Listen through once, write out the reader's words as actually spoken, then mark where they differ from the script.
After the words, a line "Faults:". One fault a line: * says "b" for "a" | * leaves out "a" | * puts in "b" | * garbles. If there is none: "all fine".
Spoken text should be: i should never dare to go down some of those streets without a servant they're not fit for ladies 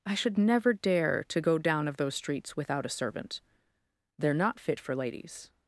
i should never dare to go down of those streets without a servant they're not fit for ladies
Faults:
* leaves out "some"